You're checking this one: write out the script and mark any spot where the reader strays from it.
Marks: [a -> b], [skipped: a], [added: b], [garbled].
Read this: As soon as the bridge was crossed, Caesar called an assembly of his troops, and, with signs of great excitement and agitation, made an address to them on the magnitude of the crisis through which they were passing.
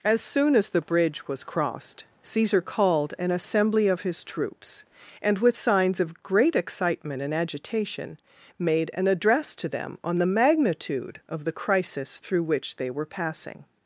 As soon as the bridge was crossed, Caesar called an assembly of his troops, and, with signs of great excitement and agitation, made an address to them on the magnitude of the crisis through which they were passing.